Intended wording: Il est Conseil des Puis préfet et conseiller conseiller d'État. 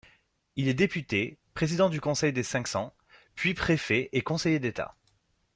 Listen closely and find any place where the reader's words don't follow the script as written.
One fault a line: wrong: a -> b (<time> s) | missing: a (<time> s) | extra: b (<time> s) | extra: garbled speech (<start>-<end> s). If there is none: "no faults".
extra: député président du (0.7 s)
extra: Cinq Cents (2.4 s)
missing: conseiller (4.6 s)